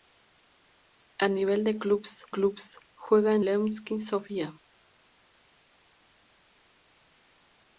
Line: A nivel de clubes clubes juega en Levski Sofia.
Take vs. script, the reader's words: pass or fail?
pass